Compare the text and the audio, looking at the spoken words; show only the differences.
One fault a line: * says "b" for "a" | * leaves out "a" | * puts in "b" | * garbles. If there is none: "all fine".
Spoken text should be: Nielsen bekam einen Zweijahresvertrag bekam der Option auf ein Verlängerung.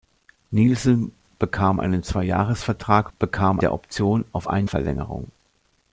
all fine